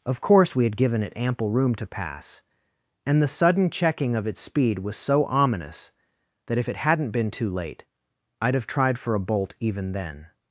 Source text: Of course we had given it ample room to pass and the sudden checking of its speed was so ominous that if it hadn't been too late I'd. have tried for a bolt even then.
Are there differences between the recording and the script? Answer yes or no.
no